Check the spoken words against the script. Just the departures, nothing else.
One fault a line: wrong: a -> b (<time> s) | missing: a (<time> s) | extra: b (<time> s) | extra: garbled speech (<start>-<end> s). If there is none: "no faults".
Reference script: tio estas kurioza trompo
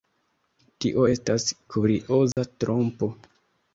no faults